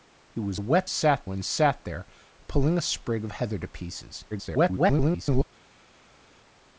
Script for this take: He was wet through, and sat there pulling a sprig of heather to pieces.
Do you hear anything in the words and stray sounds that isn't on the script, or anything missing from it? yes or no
yes